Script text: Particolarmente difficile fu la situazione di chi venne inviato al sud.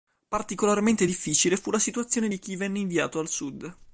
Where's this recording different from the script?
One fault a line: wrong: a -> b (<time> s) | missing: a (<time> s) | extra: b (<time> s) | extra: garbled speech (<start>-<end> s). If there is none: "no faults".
no faults